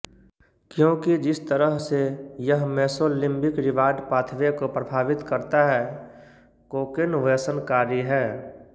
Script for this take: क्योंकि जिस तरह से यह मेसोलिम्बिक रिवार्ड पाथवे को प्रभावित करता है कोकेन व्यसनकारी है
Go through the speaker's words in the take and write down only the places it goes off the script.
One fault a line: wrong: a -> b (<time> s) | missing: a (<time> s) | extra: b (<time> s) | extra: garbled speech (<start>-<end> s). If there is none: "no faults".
no faults